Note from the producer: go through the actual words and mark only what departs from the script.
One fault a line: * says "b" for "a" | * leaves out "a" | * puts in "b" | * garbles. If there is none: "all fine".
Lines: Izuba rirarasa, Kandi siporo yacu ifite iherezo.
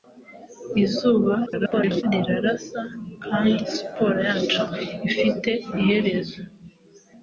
* garbles